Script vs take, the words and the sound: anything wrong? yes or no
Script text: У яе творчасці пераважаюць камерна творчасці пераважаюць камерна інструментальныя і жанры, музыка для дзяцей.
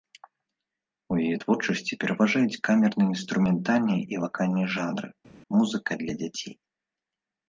yes